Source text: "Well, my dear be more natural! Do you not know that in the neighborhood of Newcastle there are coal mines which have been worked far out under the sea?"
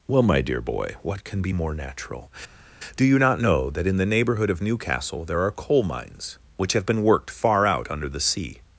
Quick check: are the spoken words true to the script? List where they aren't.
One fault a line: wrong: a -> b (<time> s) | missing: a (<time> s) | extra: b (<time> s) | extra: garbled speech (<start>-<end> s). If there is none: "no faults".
extra: boy what can (0.6 s)